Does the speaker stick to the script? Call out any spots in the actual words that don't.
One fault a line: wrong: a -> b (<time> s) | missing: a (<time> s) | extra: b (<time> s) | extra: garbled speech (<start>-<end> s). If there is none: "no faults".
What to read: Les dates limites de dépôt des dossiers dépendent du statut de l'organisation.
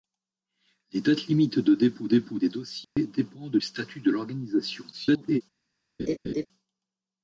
extra: dépôt (2.1 s)
missing: du (3.6 s)
extra: garbled speech (4.9-5.4 s)